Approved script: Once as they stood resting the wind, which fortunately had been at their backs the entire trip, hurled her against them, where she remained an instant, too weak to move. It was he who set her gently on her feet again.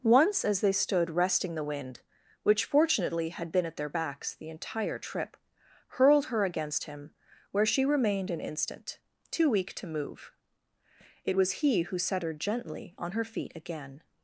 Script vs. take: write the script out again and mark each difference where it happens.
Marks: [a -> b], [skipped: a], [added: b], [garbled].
Once as they stood resting the wind, which fortunately had been at their backs the entire trip, hurled her against [them, -> him] where she remained an instant, too weak to move. It was he who set her gently on her feet again.